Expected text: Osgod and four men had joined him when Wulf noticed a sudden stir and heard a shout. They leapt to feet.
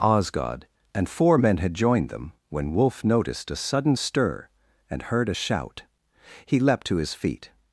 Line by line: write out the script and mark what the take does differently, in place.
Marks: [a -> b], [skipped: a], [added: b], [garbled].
Osgod and four men had joined [him -> them] when Wulf noticed a sudden stir and heard a shout. [They -> He] leapt to [added: his] feet.